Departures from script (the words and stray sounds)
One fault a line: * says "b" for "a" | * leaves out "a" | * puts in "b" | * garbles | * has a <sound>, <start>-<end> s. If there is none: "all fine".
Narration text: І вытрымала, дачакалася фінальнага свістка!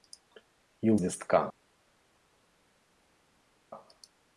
* leaves out "вытрымала дачакалася фінальнага"